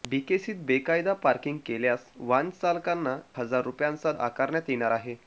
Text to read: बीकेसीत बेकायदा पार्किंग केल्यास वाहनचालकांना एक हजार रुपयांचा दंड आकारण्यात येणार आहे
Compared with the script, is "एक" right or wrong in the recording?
wrong